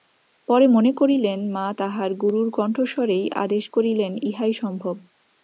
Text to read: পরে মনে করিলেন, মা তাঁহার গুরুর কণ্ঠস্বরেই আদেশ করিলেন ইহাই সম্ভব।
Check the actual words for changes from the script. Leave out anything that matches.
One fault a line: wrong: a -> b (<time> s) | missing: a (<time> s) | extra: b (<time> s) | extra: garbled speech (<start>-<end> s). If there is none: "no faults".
no faults